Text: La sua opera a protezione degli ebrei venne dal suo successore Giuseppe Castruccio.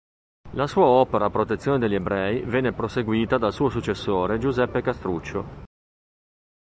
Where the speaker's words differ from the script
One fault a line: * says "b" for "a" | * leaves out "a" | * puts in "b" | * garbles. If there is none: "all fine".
* puts in "proseguita"